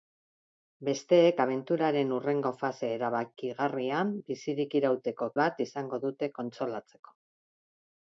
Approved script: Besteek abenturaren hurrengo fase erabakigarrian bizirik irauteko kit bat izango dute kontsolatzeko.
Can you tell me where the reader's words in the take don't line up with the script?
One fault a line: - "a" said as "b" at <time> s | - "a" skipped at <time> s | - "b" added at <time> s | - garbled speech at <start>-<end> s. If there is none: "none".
- "kit" skipped at 5.3 s